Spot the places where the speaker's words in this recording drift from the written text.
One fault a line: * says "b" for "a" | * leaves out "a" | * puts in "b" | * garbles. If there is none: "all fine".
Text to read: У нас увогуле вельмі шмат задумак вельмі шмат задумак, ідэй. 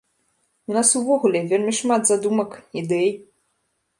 * leaves out "вельмі шмат задумак"